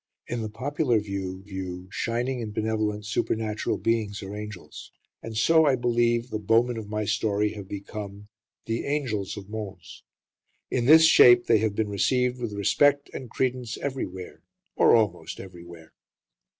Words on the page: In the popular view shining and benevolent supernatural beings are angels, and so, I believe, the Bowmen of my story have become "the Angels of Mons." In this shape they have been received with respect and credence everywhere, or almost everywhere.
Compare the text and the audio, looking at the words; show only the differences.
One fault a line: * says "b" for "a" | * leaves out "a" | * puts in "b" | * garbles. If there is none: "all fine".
* puts in "view"